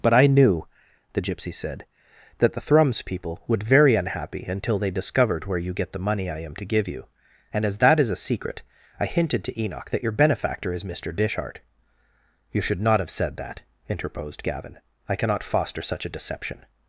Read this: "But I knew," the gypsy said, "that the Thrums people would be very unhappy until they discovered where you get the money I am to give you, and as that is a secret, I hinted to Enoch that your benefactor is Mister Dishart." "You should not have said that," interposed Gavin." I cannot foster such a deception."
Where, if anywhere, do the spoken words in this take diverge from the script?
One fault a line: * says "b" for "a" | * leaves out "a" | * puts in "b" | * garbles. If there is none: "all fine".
* leaves out "be"